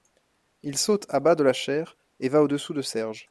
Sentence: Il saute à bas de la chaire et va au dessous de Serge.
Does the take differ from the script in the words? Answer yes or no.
no